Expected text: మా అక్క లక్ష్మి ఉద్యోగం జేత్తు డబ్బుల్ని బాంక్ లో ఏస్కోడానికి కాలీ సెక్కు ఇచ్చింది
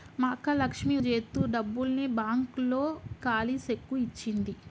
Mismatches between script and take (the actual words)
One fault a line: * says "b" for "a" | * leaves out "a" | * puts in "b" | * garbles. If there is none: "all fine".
* leaves out "ఉద్యోగం"
* leaves out "ఏస్కోడానికి"